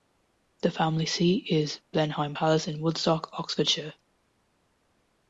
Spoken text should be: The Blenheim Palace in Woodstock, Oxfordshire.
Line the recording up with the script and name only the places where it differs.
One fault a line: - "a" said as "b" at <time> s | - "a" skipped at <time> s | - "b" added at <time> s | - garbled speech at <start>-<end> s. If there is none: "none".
- "family seat is" added at 0.7 s